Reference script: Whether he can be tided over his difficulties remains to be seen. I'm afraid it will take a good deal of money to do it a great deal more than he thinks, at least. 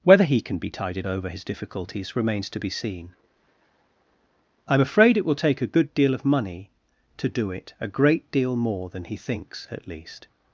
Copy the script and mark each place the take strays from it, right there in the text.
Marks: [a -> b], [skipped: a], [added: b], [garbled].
Whether he can be tided over his difficulties remains to be seen. I'm afraid it will take a good deal of money to do it a great deal more than he thinks, at least.